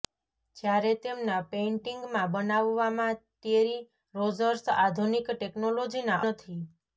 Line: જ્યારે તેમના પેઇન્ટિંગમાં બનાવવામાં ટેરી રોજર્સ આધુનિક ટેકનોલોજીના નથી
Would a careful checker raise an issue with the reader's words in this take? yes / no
no